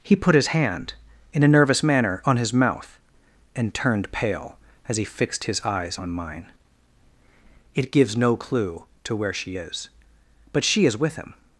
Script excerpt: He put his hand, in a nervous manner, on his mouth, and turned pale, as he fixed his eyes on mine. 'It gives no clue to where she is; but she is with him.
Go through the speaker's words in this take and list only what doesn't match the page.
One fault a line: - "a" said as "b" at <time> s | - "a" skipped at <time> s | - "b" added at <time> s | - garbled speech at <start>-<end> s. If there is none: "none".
none